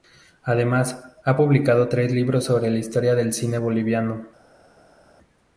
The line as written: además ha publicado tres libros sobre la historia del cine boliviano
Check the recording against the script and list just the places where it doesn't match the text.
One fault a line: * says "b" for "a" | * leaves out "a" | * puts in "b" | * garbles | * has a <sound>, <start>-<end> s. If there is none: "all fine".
all fine